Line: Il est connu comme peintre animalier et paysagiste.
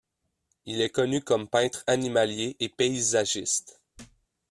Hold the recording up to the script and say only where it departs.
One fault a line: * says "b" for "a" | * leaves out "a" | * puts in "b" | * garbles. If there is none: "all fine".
all fine